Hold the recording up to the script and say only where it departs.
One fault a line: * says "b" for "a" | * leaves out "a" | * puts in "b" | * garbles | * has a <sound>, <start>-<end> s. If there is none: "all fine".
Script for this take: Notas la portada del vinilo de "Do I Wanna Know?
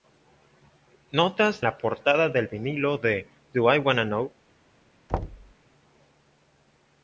* has a thud, 5.1-5.5 s